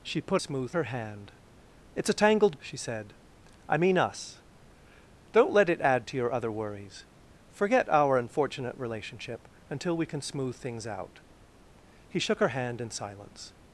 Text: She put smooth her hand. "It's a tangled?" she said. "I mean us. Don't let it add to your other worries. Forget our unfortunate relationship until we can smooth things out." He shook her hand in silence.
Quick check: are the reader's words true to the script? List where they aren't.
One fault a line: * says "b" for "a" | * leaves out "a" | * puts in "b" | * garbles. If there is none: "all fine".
all fine